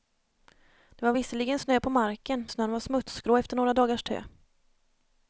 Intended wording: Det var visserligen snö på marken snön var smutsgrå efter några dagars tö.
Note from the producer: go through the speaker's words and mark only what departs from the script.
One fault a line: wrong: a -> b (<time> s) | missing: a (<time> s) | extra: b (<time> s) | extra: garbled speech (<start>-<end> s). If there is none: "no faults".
no faults